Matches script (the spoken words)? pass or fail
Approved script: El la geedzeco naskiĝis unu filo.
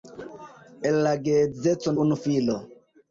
fail